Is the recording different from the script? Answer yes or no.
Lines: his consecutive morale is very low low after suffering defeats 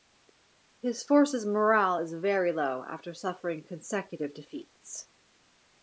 yes